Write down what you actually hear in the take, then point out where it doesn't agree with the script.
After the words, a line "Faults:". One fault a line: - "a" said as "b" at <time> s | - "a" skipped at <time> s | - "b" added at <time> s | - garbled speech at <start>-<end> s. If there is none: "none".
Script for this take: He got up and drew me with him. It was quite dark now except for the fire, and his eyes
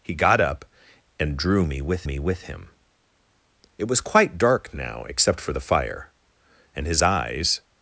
He got up and drew me with me with him. It was quite dark now except for the fire, and his eyes
Faults:
- "me with" added at 2.0 s